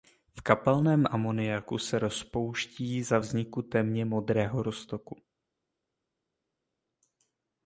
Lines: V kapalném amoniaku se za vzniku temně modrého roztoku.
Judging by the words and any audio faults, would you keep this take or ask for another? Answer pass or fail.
fail